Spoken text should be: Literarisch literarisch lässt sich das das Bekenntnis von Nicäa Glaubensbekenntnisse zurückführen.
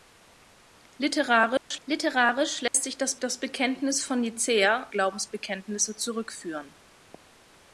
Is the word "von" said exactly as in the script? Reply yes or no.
yes